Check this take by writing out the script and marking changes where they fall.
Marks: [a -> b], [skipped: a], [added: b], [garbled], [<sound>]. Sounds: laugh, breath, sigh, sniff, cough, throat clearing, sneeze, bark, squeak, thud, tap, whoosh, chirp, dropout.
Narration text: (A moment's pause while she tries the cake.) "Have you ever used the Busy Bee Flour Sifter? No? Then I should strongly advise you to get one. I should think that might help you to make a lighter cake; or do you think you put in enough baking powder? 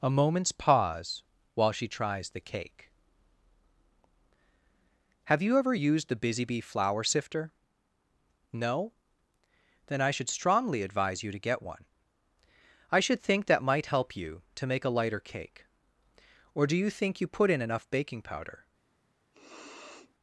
(A moment's pause while she tries the cake.) "Have you ever used the Busy Bee Flour Sifter? No? Then I should strongly advise you to get one. I should think that might help you to make a lighter cake; or do you think you put in enough baking powder? [sniff]